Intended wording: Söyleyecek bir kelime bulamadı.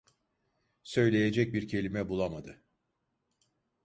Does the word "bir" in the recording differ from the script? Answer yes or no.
no